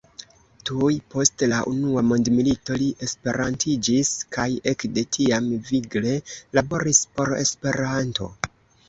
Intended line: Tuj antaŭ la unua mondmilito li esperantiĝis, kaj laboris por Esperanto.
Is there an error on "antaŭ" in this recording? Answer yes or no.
yes